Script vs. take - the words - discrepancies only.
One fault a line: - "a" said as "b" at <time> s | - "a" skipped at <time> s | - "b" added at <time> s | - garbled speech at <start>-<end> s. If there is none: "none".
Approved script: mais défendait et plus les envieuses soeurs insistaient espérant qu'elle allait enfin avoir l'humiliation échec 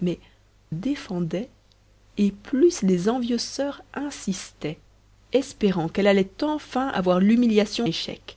none